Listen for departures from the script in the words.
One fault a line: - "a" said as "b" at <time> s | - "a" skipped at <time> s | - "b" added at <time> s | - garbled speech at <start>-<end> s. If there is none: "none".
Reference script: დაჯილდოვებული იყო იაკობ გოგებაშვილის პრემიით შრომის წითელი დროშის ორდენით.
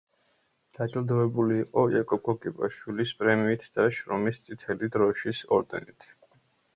- "და" added at 3.8 s